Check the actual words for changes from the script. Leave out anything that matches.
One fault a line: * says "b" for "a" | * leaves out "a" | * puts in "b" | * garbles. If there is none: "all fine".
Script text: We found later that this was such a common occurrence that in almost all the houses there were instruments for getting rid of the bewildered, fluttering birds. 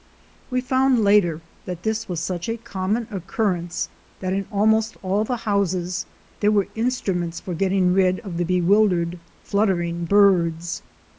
all fine